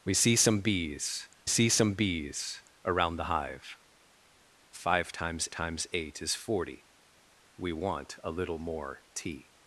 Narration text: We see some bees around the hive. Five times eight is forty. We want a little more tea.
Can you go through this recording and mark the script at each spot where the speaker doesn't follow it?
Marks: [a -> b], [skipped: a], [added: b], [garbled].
We see some bees [added: see some bees] around the hive. Five times [added: times] eight is forty. We want a little more tea.